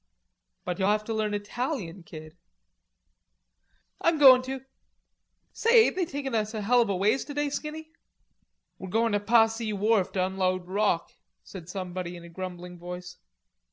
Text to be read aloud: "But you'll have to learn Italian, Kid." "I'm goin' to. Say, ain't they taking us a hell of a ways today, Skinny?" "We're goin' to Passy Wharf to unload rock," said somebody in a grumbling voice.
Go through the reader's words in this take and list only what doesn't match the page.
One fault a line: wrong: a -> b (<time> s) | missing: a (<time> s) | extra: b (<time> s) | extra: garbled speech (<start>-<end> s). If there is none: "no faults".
no faults